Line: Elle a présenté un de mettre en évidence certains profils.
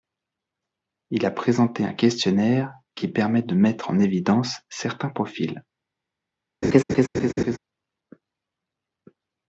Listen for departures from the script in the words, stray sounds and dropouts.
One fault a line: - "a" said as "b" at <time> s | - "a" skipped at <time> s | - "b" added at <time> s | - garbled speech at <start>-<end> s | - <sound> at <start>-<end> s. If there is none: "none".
- "Elle" said as "Il" at 1.1 s
- "questionnaire qui permet" added at 1.9 s
- laugh at 6.6-7.6 s